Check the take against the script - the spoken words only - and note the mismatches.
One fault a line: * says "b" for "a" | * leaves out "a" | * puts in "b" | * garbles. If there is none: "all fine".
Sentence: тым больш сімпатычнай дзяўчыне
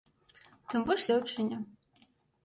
* leaves out "сімпатычнай"